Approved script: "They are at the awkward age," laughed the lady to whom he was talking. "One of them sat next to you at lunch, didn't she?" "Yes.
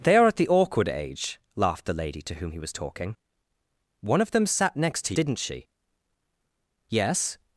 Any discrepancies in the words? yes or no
yes